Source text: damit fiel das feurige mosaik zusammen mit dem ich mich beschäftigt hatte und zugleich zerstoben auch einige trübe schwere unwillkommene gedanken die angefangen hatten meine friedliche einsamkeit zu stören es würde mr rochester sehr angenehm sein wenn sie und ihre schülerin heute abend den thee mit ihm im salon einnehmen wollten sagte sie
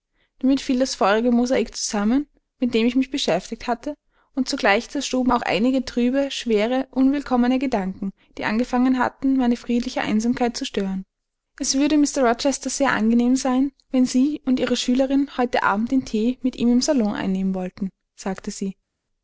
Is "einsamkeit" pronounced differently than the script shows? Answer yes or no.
no